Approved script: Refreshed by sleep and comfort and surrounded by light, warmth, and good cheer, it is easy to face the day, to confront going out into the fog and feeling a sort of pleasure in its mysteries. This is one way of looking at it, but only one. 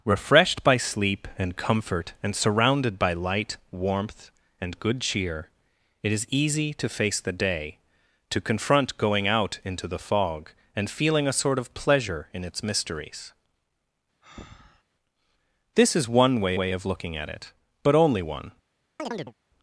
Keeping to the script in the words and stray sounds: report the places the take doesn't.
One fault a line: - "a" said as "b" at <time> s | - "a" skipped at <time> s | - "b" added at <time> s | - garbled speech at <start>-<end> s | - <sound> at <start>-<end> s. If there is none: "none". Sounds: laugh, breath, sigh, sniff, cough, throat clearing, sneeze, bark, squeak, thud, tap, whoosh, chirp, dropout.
- breath at 14.2-14.8 s
- "way" added at 16.6 s
- chirp at 19.0-19.3 s